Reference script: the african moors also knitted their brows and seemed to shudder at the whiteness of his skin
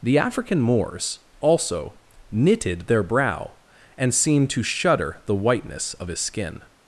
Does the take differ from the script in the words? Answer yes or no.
yes